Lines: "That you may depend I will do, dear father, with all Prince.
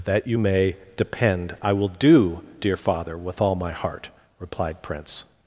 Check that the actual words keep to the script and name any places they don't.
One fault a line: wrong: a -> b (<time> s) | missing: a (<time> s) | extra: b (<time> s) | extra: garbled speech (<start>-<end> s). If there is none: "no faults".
extra: my heart replied (3.5 s)